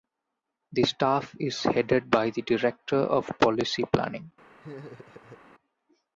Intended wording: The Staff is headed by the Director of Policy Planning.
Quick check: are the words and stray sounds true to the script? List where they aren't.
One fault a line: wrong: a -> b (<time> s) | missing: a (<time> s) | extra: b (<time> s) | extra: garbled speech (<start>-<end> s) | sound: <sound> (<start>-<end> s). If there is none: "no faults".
sound: laugh (4.6-5.4 s)